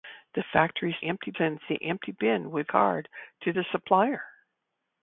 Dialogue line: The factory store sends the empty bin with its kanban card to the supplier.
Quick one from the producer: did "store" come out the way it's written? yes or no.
no